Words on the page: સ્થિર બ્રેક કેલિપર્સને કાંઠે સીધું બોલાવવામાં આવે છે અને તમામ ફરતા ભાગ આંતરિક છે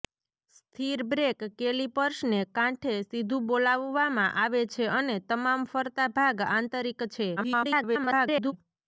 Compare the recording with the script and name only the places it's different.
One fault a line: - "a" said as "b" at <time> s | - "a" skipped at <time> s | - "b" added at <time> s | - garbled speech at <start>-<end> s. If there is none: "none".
- garbled speech at 7.4-8.5 s